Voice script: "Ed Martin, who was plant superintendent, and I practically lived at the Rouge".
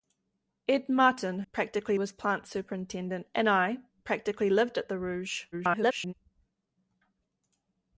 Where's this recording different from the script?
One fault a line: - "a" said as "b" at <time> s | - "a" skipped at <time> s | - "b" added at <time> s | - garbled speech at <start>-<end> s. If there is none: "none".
- "who" said as "practically" at 1.5 s
- garbled speech at 5.5-6.1 s